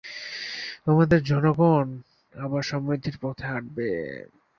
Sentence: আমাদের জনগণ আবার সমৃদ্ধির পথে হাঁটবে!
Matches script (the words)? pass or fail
pass